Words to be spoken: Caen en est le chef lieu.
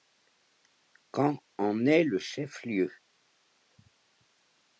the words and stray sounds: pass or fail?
pass